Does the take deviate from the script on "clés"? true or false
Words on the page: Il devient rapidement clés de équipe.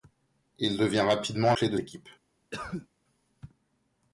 false